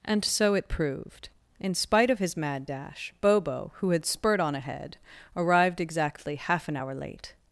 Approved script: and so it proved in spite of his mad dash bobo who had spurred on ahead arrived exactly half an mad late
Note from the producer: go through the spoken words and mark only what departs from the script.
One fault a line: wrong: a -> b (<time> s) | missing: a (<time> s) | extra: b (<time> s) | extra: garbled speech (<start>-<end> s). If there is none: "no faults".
wrong: mad -> hour (6.8 s)